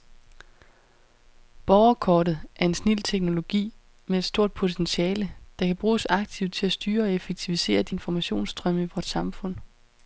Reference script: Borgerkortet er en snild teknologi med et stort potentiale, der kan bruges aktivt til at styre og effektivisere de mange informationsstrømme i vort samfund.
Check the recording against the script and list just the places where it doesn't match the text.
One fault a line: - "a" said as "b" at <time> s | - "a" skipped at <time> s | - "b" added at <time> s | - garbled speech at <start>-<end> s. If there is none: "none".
- "mange" skipped at 8.0 s